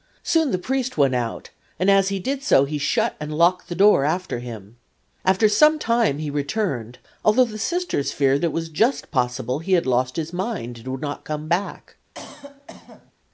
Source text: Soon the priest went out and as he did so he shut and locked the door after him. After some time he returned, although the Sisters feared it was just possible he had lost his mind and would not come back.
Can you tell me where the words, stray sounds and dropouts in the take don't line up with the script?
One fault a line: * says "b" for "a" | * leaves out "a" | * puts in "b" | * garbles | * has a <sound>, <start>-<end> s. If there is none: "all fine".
* has a cough, 12.1-13.1 s